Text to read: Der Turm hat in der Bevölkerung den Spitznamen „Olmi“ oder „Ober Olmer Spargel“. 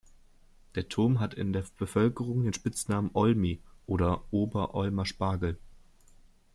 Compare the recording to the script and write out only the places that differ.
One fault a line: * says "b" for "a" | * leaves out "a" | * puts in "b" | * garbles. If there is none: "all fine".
all fine